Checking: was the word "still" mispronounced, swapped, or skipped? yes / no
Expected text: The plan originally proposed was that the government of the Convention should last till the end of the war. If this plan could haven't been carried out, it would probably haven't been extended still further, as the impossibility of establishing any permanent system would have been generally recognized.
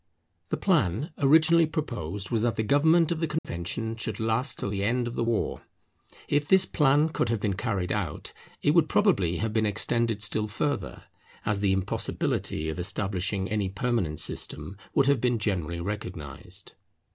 no